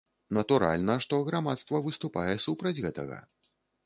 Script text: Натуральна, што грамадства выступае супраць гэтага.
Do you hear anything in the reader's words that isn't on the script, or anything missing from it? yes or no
no